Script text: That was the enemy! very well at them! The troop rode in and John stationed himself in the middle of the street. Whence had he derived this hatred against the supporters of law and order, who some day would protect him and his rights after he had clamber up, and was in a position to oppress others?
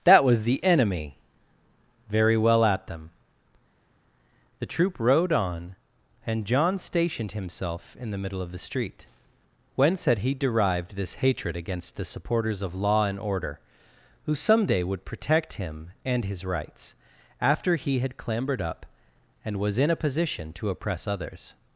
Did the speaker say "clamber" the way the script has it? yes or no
no